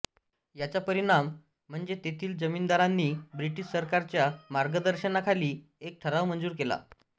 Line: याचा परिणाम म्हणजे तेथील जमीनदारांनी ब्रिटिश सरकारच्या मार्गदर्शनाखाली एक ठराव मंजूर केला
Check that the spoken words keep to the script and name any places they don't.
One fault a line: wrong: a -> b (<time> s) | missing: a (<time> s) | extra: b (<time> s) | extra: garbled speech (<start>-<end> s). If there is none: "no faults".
no faults